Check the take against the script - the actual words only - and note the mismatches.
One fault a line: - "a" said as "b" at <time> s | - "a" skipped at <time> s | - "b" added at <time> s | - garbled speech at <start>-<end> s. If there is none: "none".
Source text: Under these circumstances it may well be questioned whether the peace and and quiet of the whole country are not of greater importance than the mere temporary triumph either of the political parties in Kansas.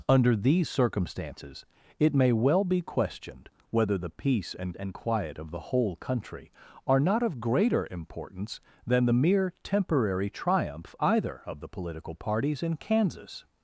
none